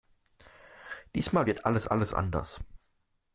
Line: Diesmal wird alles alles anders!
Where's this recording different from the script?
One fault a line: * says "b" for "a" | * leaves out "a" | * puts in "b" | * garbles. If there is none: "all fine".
all fine